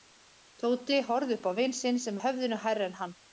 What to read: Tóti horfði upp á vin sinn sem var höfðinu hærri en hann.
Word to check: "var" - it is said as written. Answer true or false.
false